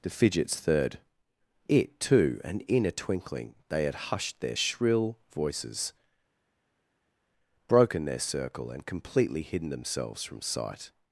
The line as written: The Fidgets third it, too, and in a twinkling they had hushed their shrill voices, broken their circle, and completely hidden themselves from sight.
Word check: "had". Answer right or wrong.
right